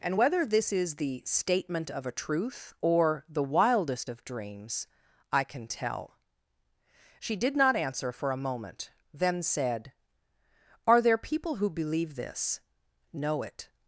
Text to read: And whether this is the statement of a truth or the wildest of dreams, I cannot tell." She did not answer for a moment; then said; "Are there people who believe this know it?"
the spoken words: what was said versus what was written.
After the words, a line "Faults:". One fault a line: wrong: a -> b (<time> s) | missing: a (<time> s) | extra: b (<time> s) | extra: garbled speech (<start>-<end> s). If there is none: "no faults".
And whether this is the statement of a truth or the wildest of dreams, I can tell." She did not answer for a moment; then said; "Are there people who believe this know it?"
Faults:
wrong: cannot -> can (5.4 s)